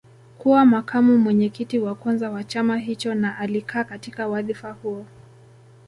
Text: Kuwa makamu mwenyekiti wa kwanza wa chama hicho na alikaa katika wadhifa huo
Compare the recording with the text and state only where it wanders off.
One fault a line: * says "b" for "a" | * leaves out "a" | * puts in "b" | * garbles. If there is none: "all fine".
all fine